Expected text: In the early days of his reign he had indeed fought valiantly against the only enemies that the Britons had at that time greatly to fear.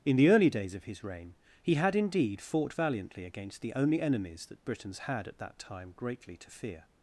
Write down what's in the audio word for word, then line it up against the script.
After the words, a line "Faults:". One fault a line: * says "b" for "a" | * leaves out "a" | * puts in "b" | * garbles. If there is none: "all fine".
In the early days of his reign he had indeed fought valiantly against the only enemies that Britons had at that time greatly to fear.
Faults:
* leaves out "the"